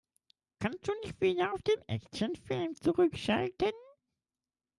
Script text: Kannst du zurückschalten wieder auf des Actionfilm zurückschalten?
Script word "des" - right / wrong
wrong